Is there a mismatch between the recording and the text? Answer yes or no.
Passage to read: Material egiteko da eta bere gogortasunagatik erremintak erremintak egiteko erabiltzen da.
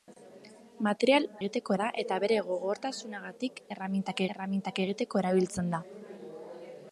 no